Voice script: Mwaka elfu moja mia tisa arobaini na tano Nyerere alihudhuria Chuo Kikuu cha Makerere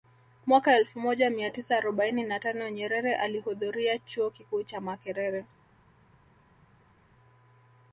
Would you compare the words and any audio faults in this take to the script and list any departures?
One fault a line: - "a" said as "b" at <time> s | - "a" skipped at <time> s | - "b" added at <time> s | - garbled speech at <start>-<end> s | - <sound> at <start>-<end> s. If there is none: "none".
none